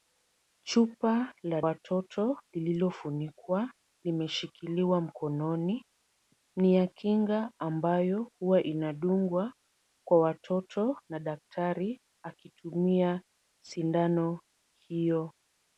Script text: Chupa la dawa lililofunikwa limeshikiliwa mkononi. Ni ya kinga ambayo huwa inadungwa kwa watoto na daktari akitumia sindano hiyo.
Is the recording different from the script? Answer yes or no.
yes